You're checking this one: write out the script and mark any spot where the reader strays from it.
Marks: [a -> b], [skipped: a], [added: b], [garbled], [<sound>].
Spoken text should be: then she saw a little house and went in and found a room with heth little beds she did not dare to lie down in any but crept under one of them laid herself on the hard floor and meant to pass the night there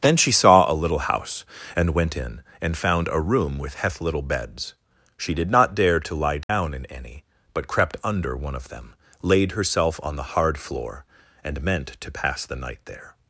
then she saw a little house and went in and found a room with heth little beds she did not dare to lie down [dropout] in any but crept under one of them laid herself on the hard floor and meant to pass the night there